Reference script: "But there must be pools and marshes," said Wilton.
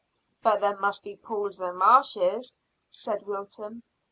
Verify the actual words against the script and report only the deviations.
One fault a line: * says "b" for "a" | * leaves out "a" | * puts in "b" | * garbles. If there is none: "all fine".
all fine